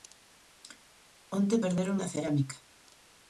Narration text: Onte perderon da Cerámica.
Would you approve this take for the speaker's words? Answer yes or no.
yes